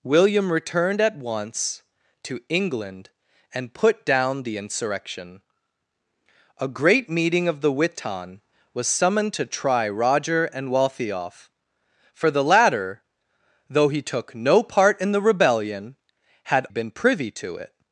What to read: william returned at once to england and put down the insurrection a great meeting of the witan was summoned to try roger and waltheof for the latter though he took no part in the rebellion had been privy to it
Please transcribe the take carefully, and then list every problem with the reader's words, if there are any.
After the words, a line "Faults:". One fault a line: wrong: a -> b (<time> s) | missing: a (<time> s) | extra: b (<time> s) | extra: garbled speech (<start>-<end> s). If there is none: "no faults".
william returned at once to england and put down the insurrection a great meeting of the witan was summoned to try roger and waltheof for the latter though he took no part in the rebellion had been privy to it
Faults:
no faults